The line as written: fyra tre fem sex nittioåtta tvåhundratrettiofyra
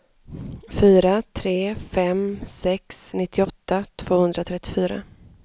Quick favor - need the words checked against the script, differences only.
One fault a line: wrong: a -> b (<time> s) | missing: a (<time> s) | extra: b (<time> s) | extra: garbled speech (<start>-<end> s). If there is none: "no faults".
no faults